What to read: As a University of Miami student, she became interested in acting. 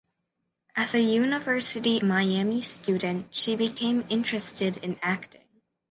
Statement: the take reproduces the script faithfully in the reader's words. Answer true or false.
false